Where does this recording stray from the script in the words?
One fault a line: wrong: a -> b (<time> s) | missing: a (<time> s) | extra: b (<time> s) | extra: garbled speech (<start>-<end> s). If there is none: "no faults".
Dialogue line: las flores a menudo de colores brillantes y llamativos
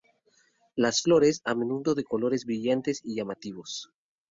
no faults